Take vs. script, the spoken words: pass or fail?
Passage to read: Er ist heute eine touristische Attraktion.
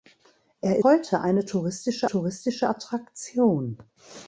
fail